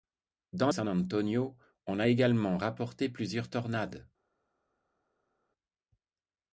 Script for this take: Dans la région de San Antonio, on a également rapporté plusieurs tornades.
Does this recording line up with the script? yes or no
no